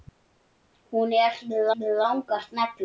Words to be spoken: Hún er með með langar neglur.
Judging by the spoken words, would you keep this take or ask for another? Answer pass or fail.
pass